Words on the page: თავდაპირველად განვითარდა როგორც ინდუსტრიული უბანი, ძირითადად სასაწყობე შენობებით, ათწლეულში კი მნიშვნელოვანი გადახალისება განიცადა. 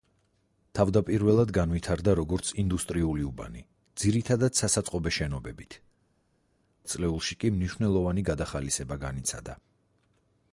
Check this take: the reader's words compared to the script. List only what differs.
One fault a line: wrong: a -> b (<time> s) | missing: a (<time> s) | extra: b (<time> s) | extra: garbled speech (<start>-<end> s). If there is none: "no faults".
no faults